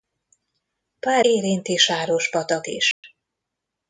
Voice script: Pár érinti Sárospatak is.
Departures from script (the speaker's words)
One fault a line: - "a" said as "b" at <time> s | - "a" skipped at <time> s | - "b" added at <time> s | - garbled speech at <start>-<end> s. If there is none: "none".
none